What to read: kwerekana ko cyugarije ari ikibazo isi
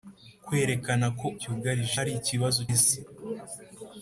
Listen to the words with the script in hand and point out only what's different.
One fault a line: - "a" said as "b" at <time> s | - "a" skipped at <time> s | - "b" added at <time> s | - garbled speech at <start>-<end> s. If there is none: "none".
none